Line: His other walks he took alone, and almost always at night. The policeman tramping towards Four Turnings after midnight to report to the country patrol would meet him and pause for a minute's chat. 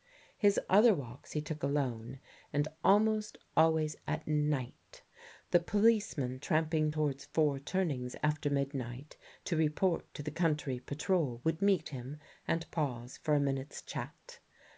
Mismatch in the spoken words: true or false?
false